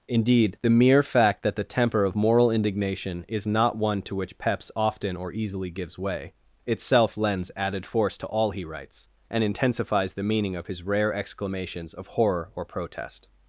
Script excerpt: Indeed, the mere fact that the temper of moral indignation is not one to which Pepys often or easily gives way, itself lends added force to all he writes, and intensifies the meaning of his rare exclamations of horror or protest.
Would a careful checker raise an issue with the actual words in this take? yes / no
no